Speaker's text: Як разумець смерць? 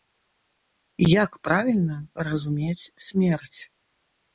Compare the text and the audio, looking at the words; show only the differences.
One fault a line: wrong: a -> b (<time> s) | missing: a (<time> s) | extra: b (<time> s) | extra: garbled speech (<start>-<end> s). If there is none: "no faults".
extra: правільна (1.5 s)